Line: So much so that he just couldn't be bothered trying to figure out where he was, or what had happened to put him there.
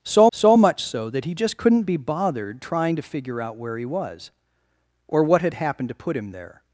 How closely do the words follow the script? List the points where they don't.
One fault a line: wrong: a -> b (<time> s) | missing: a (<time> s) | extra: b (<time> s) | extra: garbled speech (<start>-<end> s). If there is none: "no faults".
extra: so (0.3 s)